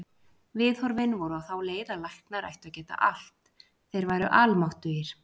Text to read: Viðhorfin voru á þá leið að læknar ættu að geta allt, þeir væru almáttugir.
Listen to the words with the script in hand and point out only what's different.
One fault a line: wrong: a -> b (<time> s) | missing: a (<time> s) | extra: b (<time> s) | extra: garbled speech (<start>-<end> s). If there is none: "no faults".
no faults